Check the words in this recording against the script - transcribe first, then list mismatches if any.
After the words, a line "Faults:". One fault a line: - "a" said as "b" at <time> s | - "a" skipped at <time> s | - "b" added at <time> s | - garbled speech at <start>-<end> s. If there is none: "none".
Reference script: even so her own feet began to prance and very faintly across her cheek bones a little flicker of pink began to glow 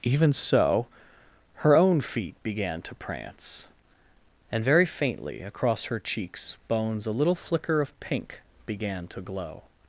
even so her own feet began to prance and very faintly across her cheeks bones a little flicker of pink began to glow
Faults:
- "cheek" said as "cheeks" at 6.0 s